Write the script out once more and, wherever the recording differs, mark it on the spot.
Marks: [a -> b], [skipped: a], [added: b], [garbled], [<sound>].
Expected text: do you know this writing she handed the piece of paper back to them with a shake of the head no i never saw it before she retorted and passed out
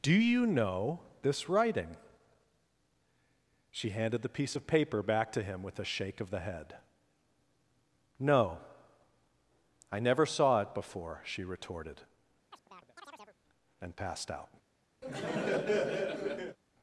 do you know this writing she handed the piece of paper back to [them -> him] with a shake of the head no i never saw it before she retorted [chirp] and passed out [laugh]